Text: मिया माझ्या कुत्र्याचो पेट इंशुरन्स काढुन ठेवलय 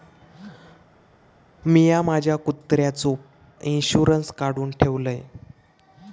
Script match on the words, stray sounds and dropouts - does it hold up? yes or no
no